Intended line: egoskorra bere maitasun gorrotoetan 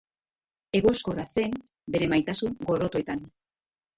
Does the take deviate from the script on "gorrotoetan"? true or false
false